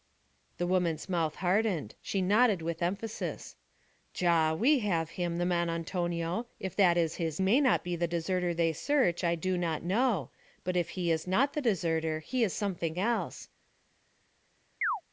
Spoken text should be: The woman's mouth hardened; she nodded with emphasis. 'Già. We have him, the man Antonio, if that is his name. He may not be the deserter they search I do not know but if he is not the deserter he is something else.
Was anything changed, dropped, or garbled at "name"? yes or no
yes